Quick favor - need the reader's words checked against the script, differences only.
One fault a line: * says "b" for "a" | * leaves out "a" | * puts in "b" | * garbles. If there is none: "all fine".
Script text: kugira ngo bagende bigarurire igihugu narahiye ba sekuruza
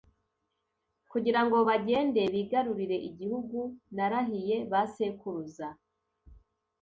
all fine